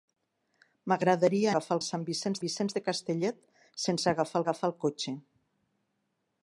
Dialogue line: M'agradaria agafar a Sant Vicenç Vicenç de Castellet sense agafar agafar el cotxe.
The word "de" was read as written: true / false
true